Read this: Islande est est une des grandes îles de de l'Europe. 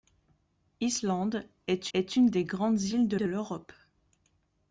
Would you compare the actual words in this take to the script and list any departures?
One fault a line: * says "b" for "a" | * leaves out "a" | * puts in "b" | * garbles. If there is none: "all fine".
all fine